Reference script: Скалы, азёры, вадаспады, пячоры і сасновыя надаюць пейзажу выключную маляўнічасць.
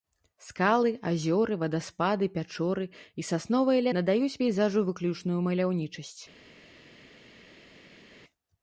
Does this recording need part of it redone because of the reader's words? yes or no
no